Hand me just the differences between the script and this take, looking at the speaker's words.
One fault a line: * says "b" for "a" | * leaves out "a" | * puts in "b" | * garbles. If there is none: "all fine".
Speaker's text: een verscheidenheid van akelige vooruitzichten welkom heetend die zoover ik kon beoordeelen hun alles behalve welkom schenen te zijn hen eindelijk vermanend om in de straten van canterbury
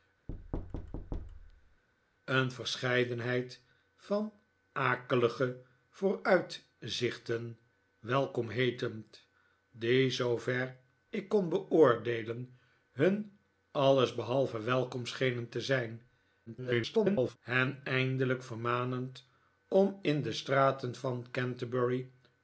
* garbles